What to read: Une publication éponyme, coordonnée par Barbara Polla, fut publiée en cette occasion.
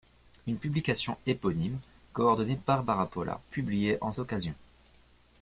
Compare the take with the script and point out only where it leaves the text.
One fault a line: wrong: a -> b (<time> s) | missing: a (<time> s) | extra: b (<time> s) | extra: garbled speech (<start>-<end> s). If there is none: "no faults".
missing: par (2.5 s)
missing: fut (3.4 s)
missing: cette (4.1 s)